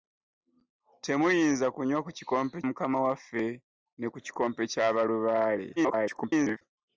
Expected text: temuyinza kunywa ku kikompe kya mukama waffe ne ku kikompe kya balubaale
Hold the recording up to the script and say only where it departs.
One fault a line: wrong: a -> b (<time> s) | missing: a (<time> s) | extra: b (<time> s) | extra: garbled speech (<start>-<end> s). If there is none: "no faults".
missing: kya (2.6 s)
extra: garbled speech (5.8-6.6 s)